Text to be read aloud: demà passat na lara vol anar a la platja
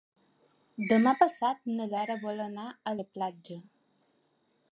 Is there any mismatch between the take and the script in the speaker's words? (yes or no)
no